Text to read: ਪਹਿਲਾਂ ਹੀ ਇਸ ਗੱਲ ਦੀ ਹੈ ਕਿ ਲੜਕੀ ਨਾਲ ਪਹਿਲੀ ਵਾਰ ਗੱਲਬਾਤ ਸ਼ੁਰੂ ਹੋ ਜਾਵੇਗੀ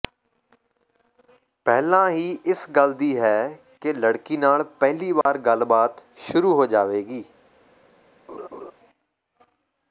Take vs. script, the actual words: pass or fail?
pass